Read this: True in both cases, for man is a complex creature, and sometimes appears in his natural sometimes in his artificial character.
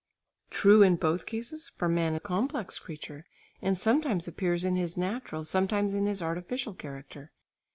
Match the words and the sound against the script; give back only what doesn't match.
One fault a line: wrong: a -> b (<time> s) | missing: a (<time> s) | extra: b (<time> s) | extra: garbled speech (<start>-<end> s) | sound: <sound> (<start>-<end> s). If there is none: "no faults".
missing: is (2.1 s)